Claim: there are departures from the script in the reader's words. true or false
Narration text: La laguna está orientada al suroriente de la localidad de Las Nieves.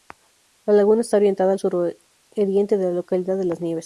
false